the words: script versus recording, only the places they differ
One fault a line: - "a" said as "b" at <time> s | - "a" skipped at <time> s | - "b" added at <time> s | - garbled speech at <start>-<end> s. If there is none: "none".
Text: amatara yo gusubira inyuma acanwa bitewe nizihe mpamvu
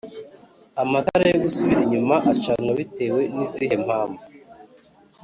none